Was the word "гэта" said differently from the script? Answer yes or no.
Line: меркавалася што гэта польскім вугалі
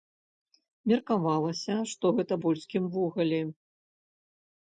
no